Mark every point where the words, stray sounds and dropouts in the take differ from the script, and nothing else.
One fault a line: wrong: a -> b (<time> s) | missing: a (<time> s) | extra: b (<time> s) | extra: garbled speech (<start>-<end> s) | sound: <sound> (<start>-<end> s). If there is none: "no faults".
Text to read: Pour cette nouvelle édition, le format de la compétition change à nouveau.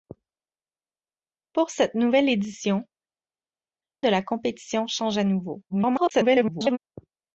missing: le format (2.9 s)
extra: garbled speech (5.7-6.8 s)